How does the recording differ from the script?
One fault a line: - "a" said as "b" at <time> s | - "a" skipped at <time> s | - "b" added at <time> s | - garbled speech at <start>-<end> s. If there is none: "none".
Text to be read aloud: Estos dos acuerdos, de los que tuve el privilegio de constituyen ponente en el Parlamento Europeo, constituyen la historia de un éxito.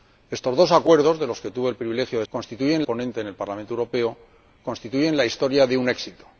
none